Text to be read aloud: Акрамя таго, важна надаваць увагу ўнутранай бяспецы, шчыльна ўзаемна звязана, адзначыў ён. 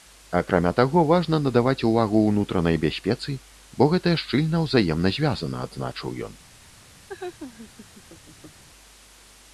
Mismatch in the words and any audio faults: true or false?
true